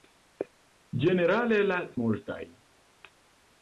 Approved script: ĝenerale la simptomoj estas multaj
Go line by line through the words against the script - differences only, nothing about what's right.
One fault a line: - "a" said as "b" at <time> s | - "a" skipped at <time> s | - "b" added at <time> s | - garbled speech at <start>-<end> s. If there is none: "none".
- "simptomoj estas" skipped at 1.8 s